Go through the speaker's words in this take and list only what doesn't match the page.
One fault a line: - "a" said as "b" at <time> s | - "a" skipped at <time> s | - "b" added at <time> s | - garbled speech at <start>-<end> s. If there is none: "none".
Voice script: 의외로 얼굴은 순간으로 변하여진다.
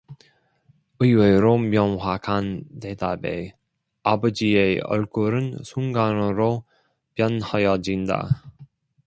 - "명확한 대답에 아버지의" added at 1.6 s